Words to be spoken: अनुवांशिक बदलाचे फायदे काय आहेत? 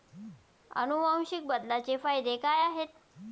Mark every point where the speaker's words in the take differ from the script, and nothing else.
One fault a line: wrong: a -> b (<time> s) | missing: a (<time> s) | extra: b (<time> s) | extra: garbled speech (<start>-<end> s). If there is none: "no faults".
no faults